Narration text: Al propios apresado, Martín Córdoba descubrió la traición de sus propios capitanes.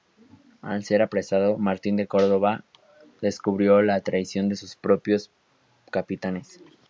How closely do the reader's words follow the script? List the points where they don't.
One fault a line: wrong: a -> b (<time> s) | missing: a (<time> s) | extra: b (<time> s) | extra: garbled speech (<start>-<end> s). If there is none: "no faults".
wrong: propios -> ser (0.8 s)
extra: de (1.9 s)